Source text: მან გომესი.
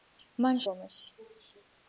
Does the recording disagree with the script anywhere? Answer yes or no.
no